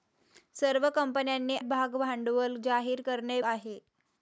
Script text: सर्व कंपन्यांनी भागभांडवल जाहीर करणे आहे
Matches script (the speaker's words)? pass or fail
pass